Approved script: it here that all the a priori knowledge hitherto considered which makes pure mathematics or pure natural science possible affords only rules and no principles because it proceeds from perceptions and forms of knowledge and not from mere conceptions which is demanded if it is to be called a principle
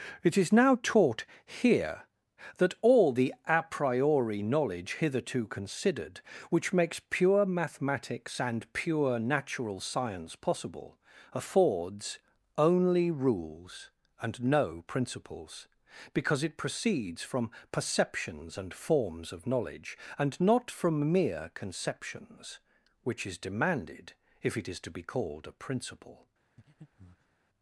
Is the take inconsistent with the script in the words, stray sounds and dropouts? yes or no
yes